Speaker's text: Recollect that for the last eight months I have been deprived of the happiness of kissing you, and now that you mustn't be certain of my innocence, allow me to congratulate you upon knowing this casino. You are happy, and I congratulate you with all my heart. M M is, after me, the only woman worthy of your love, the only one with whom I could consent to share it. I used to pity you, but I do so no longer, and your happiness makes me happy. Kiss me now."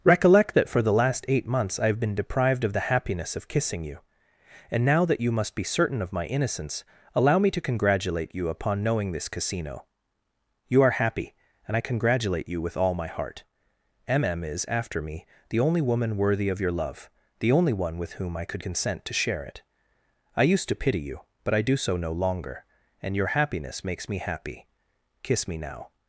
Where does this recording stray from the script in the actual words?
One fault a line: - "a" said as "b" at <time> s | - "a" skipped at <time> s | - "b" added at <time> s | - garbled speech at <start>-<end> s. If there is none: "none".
- "mustn't" said as "must" at 5.3 s